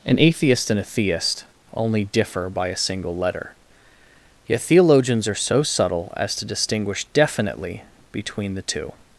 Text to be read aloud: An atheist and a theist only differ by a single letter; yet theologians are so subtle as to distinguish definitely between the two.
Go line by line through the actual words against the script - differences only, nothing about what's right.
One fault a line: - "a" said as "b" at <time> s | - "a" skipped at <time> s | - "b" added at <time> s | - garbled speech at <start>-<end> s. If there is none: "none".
none